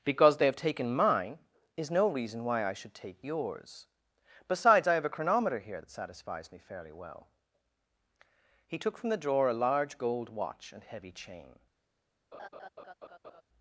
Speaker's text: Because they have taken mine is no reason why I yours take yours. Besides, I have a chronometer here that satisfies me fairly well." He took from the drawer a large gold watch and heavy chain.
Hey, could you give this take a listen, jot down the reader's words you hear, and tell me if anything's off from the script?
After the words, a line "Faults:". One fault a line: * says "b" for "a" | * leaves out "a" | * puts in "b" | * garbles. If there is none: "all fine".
Because they have taken mine is no reason why I should take yours. Besides, I have a chronometer here that satisfies me fairly well." He took from the drawer a large gold watch and heavy chain.
Faults:
* says "should" for "yours"